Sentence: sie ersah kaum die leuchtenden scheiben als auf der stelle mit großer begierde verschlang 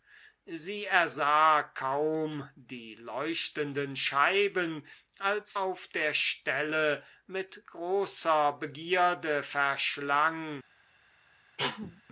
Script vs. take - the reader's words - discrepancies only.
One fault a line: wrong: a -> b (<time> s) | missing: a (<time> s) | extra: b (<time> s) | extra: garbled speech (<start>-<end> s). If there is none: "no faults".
no faults